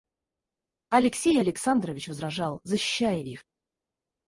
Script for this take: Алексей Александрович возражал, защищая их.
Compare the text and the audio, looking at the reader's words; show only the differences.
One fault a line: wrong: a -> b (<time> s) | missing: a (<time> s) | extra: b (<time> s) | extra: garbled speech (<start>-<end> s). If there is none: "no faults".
no faults